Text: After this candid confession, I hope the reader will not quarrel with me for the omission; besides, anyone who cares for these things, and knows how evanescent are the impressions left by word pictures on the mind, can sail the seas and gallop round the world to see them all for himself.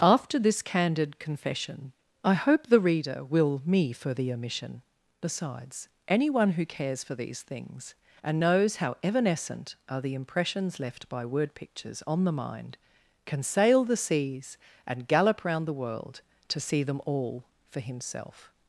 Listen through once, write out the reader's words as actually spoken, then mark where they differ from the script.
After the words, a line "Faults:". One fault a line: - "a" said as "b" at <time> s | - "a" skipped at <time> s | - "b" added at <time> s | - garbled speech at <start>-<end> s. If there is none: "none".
After this candid confession, I hope the reader will me for the omission; besides, anyone who cares for these things, and knows how evanescent are the impressions left by word pictures on the mind, can sail the seas and gallop round the world to see them all for himself.
Faults:
- "not quarrel with" skipped at 3.6 s